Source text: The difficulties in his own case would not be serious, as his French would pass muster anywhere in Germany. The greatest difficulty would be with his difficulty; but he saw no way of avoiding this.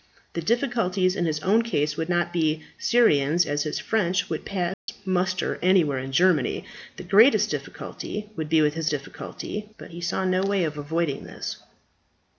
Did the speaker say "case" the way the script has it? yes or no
yes